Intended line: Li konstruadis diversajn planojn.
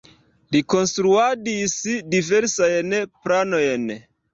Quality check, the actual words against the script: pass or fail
pass